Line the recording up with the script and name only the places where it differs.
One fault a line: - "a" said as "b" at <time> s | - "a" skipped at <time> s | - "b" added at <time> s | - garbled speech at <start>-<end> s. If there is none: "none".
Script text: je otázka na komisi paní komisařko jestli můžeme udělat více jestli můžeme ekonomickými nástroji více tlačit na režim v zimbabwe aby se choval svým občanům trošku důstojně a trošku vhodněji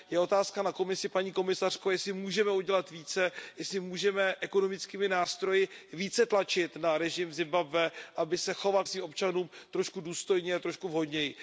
none